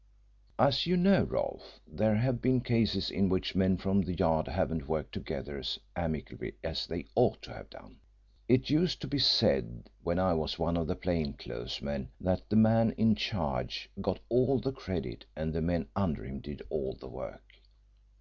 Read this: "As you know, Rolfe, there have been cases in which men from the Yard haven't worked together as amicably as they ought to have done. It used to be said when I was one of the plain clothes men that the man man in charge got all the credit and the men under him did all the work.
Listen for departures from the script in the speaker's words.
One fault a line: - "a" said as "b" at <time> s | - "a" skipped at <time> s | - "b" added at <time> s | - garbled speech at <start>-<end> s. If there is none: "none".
- "man" skipped at 12.9 s